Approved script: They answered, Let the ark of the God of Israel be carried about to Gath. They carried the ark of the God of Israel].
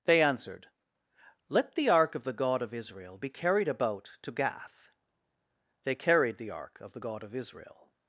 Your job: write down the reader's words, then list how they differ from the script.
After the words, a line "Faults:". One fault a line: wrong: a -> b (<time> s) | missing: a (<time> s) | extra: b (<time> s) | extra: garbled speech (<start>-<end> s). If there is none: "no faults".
They answered, Let the ark of the God of Israel be carried about to Gath. They carried the ark of the God of Israel].
Faults:
no faults